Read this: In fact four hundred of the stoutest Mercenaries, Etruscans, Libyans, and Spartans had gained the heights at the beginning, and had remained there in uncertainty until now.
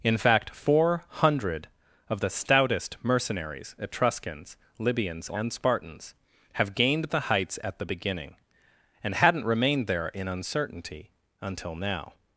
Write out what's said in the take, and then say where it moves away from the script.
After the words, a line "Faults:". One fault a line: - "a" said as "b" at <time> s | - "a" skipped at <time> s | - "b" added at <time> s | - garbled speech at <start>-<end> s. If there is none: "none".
In fact four hundred of the stoutest Mercenaries, Etruscans, Libyans, and Spartans have gained the heights at the beginning, and hadn't remained there in uncertainty until now.
Faults:
- "had" said as "have" at 6.5 s
- "had" said as "hadn't" at 9.1 s